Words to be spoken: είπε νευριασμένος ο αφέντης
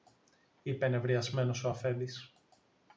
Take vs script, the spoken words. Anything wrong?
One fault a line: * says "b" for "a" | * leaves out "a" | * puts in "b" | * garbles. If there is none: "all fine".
all fine